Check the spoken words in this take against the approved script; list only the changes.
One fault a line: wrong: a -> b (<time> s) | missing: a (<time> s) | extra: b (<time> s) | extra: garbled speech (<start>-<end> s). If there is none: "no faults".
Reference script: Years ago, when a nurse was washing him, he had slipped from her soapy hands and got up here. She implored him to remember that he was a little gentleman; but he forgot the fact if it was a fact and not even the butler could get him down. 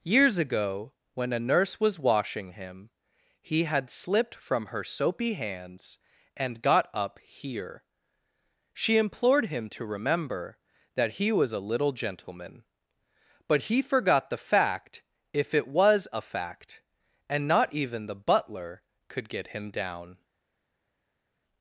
no faults